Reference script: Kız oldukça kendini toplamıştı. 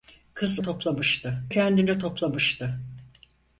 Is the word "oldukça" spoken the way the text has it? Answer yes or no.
no